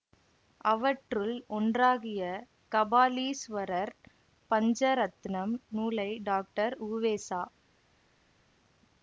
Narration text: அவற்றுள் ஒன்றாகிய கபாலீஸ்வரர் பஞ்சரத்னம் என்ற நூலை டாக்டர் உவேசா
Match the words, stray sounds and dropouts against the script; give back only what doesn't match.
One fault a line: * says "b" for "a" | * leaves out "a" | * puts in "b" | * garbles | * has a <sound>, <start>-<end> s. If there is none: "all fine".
* leaves out "என்ற"